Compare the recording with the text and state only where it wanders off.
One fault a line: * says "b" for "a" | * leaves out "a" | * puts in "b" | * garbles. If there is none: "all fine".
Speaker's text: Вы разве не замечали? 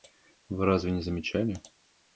all fine